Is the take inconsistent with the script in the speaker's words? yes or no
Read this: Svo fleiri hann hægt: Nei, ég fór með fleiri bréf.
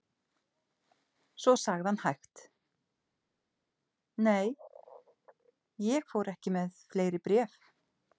yes